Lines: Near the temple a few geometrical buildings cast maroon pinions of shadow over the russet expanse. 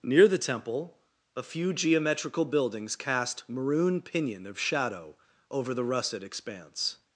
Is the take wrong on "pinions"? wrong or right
wrong